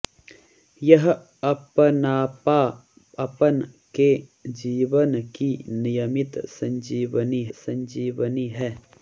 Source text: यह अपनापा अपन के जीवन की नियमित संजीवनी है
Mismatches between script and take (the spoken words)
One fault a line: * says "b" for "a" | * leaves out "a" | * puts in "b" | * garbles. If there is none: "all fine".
* puts in "संजीवनी"